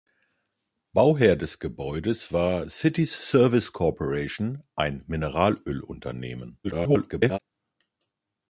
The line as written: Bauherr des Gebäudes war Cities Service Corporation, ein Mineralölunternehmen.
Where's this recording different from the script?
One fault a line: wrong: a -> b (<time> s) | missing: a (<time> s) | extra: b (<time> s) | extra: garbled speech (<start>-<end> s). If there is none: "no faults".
extra: garbled speech (6.6-7.4 s)